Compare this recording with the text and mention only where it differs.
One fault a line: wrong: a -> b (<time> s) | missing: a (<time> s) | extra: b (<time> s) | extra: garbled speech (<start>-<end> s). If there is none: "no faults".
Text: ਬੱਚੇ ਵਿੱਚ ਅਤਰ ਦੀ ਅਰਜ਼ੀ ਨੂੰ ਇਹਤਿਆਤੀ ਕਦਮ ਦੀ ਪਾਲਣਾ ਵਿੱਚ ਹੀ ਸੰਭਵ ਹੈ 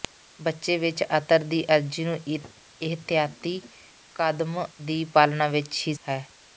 missing: ਸੰਭਵ (5.9 s)